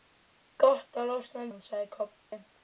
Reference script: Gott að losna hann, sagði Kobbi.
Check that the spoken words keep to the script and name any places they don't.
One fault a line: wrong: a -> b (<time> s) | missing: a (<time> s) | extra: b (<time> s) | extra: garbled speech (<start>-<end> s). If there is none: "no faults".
no faults